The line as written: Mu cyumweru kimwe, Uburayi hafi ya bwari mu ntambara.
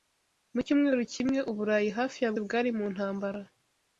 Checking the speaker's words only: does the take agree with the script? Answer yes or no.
yes